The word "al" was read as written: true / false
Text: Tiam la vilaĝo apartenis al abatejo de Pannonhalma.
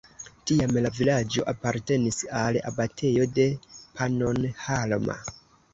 true